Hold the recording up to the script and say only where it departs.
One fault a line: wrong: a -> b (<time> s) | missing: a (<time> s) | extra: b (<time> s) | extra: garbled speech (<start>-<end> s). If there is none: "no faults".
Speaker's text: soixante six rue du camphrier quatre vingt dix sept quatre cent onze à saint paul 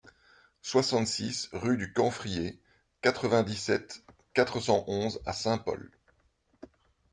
no faults